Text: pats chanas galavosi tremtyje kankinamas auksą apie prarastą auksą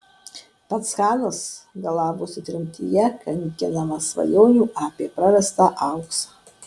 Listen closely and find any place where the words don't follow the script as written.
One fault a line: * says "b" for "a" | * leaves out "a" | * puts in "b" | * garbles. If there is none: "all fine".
* says "svajonių" for "auksą"